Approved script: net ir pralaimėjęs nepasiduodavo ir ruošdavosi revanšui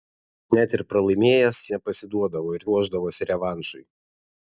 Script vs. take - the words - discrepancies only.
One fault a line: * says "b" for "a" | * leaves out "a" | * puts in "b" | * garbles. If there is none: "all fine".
all fine